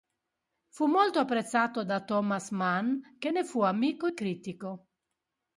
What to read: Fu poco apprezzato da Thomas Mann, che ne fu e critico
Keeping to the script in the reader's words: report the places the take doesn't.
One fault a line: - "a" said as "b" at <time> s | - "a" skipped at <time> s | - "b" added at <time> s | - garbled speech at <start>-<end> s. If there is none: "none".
- "poco" said as "molto" at 0.9 s
- "amico" added at 3.6 s